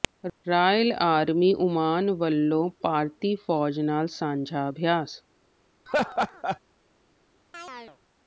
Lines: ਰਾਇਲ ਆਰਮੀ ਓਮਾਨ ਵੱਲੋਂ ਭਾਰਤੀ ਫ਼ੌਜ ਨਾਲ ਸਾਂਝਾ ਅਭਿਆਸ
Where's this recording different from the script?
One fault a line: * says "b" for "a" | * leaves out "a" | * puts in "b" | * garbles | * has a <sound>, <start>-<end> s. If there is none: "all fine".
* has a laugh, 5.9-6.6 s
* has a chirp, 7.5-8.0 s